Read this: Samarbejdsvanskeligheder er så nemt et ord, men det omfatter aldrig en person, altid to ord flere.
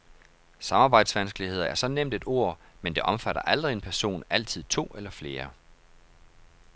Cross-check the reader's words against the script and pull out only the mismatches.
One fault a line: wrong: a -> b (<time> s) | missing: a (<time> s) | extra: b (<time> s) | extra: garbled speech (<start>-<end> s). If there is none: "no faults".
wrong: ord -> eller (5.0 s)